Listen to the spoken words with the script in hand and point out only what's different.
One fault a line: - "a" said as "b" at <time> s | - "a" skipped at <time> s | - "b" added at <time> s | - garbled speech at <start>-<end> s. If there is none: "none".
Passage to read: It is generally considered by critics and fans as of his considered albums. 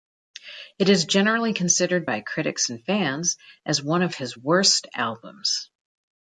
- "one" added at 3.8 s
- "considered" said as "worst" at 4.4 s